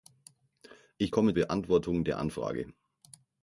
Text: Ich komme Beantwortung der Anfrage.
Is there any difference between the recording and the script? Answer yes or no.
no